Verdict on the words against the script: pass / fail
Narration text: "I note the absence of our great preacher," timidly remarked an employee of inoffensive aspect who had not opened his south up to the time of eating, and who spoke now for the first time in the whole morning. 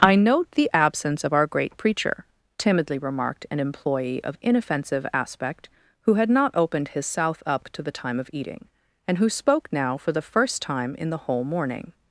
pass